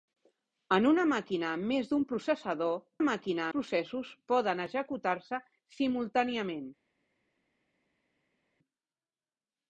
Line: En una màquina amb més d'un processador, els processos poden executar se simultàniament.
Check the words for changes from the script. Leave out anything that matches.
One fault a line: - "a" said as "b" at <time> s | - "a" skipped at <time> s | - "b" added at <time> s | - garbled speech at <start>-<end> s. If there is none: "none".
- "els" said as "màquina" at 3.0 s